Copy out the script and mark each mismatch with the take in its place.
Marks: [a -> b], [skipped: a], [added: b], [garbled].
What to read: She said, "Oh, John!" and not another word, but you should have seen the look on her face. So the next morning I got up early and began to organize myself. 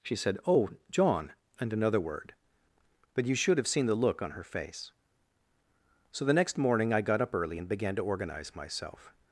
She said, "Oh, John!" and [skipped: not] another word, but you should have seen the look on her face. So the next morning I got up early and began to organize myself.